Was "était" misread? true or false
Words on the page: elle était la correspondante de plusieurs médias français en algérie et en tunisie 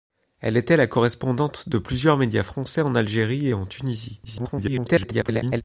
false